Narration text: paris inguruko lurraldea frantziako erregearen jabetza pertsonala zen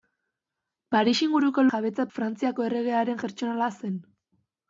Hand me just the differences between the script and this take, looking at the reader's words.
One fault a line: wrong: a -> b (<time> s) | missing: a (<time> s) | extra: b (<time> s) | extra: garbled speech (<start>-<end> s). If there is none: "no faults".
wrong: lurraldea -> jabetza (1.7 s)
missing: jabetza (3.2 s)